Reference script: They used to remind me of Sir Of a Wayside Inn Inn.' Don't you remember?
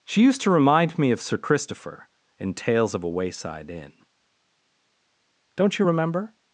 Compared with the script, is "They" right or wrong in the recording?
wrong